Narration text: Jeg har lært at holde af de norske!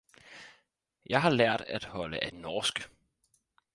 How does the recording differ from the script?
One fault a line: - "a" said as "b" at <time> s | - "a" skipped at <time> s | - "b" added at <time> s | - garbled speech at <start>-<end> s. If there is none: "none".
- "de" skipped at 2.3 s